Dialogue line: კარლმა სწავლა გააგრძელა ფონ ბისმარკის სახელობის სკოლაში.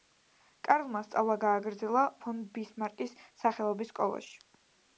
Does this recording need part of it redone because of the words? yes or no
no